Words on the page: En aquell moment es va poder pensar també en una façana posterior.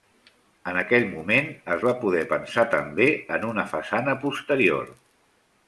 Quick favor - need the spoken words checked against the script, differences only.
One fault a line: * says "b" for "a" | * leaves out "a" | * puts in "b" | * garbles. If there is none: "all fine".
all fine